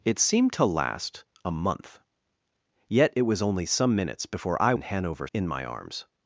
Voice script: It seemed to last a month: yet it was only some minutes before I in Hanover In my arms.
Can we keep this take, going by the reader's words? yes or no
yes